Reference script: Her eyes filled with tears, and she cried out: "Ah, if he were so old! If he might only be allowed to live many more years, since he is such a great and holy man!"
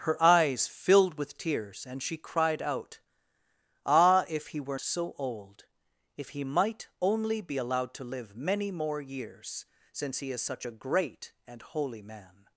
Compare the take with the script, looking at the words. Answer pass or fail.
pass